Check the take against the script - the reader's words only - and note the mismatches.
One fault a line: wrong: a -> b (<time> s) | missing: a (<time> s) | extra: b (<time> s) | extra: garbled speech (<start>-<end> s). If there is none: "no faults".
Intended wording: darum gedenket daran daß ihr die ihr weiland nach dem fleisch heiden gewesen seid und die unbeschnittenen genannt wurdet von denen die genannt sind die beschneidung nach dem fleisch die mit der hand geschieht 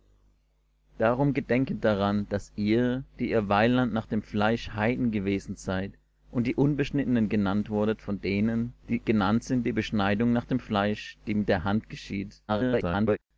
extra: garbled speech (12.5-13.2 s)